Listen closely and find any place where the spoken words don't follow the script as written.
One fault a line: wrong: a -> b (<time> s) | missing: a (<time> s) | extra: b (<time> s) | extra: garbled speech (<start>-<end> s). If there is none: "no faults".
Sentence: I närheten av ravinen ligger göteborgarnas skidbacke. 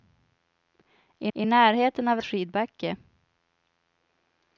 extra: I (1.3 s)
missing: ravinen ligger göteborgarnas (2.2 s)